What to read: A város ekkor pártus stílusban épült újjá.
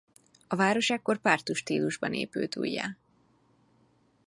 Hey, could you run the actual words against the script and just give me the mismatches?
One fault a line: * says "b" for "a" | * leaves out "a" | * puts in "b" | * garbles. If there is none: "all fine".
all fine